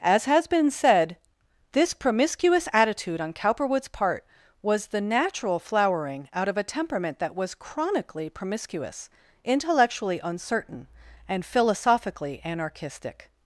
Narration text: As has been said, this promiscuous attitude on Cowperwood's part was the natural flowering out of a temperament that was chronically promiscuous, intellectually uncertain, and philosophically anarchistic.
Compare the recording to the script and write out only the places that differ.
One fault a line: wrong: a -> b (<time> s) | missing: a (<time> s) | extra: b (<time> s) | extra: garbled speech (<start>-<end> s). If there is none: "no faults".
no faults